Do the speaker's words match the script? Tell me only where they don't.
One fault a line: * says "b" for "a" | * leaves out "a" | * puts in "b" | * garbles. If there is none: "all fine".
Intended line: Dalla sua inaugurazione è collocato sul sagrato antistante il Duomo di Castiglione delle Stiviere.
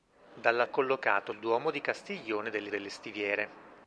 * leaves out "sua inaugurazione"
* leaves out "sul sagrato antistante"
* puts in "delle"